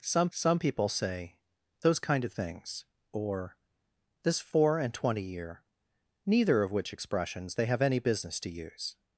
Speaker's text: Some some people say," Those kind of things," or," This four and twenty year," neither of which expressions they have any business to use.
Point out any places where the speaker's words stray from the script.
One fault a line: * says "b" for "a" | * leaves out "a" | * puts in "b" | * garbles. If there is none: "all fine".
all fine